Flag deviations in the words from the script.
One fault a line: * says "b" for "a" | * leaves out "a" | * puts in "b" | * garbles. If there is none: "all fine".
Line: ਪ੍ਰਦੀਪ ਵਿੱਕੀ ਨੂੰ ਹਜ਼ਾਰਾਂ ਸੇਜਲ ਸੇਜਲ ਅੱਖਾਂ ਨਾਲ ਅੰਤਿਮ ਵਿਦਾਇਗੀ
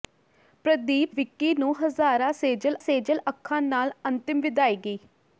all fine